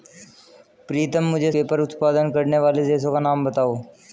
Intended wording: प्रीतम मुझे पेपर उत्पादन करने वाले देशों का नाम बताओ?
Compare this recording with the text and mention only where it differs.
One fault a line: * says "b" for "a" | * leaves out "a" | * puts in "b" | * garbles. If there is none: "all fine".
all fine